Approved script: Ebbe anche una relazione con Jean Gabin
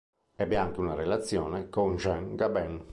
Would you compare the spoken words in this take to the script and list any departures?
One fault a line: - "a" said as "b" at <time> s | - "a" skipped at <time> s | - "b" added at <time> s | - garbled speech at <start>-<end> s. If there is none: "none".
none